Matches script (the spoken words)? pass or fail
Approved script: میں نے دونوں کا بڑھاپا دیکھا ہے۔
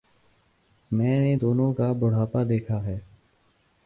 pass